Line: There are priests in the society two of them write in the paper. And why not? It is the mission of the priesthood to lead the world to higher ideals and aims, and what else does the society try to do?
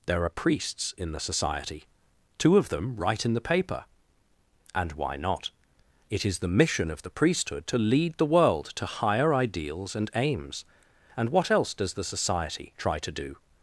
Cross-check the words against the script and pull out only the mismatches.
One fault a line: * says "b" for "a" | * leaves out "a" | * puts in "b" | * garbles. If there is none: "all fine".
all fine